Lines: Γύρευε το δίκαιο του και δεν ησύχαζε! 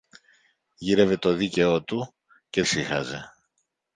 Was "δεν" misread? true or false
true